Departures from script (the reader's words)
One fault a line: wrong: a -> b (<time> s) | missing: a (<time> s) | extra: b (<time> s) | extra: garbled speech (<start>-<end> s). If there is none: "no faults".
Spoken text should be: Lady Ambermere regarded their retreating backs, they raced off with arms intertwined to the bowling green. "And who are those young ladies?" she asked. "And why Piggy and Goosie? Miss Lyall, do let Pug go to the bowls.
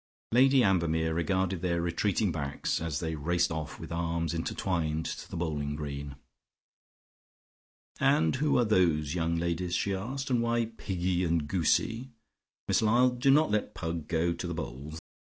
extra: as (2.8 s)
extra: not (13.3 s)